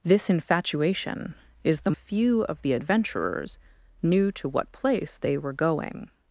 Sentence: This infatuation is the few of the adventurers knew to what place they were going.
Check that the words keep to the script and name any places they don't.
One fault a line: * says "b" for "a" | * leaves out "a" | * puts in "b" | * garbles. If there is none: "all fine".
all fine